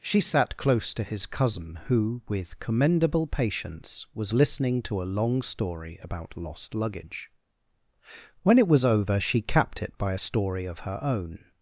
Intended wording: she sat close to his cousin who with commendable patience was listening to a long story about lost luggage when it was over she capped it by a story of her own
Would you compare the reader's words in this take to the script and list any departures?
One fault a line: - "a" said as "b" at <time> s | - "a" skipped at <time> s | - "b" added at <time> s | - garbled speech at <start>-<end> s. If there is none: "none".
none